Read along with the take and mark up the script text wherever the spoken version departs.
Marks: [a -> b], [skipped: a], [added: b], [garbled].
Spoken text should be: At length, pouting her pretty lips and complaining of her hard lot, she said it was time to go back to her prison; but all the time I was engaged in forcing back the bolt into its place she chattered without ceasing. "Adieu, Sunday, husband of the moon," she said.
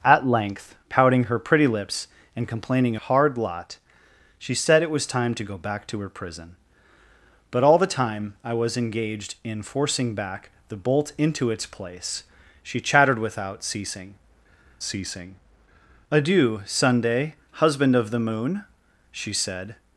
At length, pouting her pretty lips and complaining [skipped: of her] hard lot, she said it was time to go back to her prison; but all the time I was engaged in forcing back the bolt into its place she chattered without ceasing. [added: ceasing] "Adieu, Sunday, husband of the moon," she said.